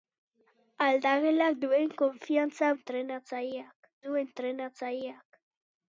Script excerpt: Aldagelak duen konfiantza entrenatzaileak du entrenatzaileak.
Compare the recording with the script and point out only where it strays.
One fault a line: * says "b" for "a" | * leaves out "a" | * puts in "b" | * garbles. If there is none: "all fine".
all fine